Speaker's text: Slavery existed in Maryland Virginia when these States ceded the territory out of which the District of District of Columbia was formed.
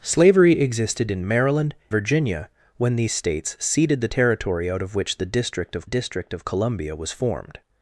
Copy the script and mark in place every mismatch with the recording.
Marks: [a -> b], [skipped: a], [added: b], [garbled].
Slavery existed in Maryland Virginia when these States ceded the territory out of which the District of District of Columbia was formed.